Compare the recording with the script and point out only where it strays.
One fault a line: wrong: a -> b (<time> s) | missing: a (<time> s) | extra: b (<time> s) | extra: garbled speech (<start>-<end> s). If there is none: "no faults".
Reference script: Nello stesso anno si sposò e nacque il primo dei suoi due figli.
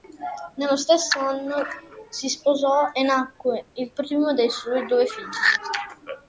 no faults